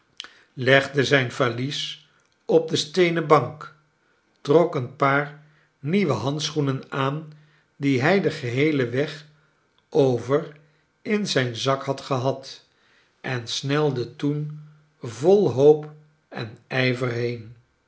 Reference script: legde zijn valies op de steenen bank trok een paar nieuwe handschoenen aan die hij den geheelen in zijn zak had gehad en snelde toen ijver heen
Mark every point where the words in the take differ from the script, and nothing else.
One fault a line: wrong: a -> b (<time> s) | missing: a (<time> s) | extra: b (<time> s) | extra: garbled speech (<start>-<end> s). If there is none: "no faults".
extra: weg over (8.9 s)
extra: vol hoop en (15.0 s)